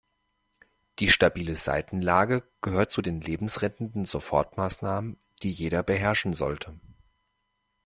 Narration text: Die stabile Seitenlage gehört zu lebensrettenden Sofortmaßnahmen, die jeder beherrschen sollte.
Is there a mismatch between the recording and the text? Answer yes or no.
yes